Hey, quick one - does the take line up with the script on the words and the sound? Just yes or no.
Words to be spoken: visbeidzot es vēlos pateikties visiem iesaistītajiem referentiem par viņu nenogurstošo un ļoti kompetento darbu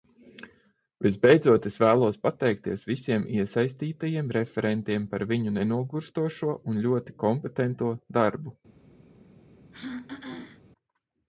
no